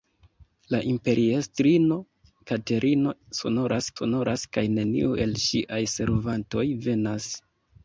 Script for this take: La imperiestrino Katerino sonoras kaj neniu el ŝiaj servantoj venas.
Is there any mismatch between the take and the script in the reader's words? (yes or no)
yes